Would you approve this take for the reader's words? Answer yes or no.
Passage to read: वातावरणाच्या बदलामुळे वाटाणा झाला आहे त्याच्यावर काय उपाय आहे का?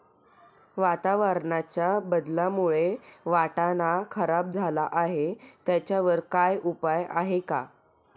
no